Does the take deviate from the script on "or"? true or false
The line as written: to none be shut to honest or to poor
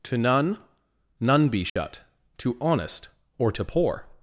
false